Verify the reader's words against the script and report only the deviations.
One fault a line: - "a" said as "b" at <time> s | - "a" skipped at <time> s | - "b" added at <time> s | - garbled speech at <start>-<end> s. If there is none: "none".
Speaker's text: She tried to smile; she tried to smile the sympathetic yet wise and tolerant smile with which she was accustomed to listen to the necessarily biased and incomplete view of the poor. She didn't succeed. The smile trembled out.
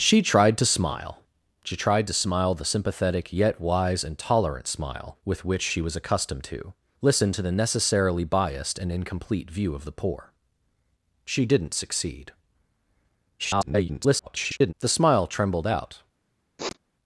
- garbled speech at 13.4-14.7 s